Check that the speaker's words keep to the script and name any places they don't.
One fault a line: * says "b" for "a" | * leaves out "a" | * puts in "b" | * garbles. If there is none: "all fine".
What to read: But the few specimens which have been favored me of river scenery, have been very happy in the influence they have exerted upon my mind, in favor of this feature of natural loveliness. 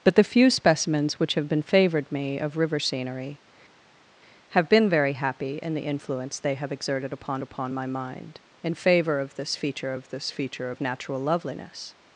* puts in "upon"
* puts in "this feature of"